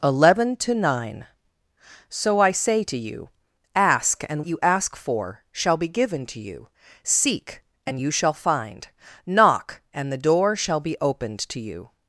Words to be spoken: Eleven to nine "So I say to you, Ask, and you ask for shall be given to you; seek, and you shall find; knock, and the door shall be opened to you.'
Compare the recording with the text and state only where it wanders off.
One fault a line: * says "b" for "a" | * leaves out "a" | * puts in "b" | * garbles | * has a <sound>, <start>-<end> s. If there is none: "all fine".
all fine